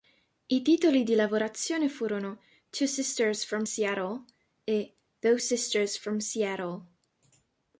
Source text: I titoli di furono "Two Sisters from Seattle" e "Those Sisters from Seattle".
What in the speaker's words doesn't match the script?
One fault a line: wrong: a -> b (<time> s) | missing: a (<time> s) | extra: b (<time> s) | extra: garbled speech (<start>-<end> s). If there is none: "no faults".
extra: lavorazione (1.1 s)